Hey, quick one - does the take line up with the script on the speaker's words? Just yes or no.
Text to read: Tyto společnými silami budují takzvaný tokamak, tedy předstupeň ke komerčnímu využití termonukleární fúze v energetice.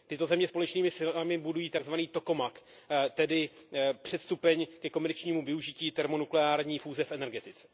no